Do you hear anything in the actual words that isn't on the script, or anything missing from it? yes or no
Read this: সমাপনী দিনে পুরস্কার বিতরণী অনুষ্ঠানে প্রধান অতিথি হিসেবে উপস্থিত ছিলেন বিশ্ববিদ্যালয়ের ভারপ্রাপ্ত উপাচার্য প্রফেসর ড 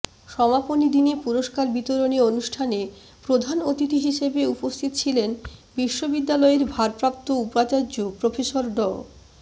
no